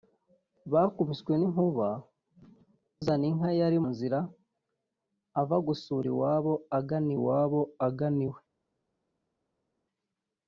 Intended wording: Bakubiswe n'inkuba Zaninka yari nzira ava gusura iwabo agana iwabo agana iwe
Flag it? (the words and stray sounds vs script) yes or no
no